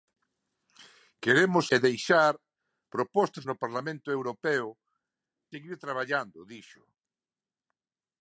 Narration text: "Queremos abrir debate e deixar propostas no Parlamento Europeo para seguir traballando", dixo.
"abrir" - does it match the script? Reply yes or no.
no